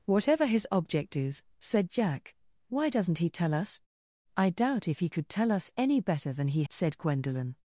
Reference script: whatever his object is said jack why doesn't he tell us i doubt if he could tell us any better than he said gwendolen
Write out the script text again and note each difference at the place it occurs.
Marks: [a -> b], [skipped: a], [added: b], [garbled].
whatever his object is said jack why doesn't he tell us i doubt if he could tell us any better than he said gwendolen